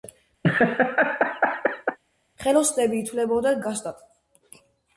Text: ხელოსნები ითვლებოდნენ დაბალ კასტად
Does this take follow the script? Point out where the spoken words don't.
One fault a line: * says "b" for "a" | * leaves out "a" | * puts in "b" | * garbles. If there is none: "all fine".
* leaves out "დაბალ"